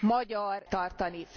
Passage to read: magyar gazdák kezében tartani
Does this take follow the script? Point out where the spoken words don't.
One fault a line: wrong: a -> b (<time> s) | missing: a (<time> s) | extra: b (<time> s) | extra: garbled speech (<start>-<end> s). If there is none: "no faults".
missing: gazdák kezében (0.7 s)